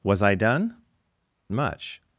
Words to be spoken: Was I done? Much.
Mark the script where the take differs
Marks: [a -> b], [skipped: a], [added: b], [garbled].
Was I done? Much.